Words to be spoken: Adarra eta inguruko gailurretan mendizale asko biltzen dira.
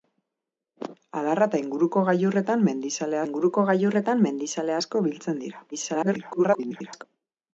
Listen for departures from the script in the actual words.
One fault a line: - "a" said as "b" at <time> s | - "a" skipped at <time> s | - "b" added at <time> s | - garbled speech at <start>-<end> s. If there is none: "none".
- "inguruko gailurretan mendizale" added at 3.3 s
- garbled speech at 5.7-7.0 s